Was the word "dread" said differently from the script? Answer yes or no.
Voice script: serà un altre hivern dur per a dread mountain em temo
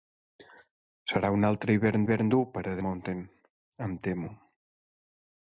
yes